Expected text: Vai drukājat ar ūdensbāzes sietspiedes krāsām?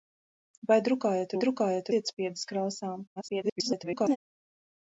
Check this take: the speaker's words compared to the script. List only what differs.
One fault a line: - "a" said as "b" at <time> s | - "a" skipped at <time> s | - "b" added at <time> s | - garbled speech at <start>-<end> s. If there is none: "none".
- "ūdensbāzes" said as "drukājat" at 1.4 s
- garbled speech at 3.2-4.2 s